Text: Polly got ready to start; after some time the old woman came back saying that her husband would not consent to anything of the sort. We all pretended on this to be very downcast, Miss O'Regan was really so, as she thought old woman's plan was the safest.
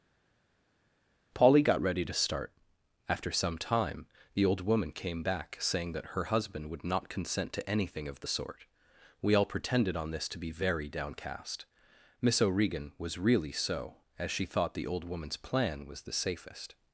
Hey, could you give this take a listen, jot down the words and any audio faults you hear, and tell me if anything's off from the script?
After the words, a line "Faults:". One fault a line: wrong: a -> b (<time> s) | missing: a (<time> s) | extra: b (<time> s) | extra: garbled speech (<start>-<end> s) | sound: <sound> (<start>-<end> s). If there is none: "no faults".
Polly got ready to start; after some time the old woman came back saying that her husband would not consent to anything of the sort. We all pretended on this to be very downcast, Miss O'Regan was really so, as she thought the old woman's plan was the safest.
Faults:
extra: the (14.7 s)